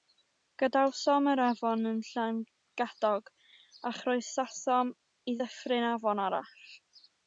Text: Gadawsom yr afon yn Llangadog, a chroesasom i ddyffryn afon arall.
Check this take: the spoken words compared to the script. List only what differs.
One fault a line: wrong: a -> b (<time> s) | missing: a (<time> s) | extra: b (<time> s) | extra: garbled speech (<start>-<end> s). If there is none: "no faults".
no faults